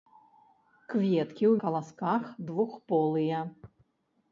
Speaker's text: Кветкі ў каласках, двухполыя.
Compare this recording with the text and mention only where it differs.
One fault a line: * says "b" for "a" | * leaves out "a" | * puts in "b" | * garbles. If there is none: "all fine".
all fine